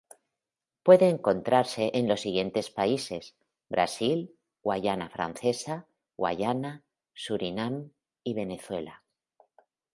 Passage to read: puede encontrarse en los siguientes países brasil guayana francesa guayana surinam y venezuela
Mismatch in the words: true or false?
false